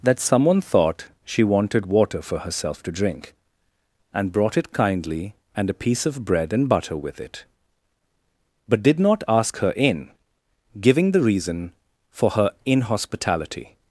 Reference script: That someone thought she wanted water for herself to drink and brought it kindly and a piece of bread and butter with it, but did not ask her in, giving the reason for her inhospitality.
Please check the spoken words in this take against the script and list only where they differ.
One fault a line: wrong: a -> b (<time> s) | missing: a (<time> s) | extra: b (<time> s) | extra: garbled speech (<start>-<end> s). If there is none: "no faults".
no faults